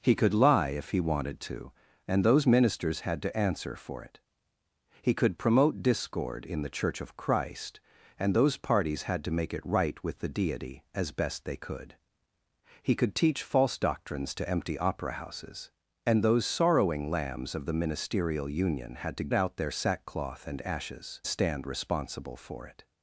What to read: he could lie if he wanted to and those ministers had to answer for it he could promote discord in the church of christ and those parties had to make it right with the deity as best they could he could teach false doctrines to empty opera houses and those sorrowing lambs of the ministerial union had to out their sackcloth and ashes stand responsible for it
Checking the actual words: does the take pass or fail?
pass